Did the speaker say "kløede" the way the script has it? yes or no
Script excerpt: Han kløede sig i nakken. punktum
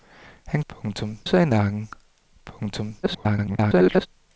no